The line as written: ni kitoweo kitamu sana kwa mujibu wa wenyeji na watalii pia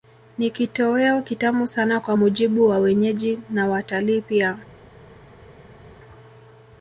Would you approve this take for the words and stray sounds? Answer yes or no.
yes